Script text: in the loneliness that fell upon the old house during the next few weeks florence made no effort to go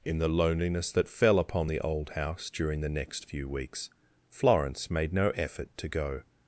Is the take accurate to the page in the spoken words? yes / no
yes